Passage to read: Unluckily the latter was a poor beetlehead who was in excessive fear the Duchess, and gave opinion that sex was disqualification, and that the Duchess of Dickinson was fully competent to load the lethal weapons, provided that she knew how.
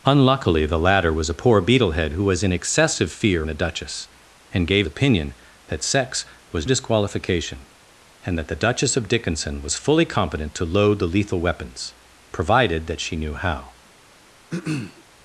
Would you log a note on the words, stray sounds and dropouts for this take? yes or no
yes